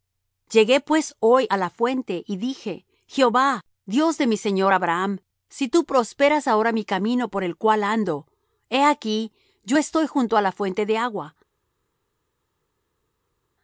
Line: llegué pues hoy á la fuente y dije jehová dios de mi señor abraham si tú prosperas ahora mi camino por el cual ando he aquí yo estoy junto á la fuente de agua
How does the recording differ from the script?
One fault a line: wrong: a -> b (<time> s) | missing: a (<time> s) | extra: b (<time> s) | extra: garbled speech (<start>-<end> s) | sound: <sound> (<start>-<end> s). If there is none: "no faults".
no faults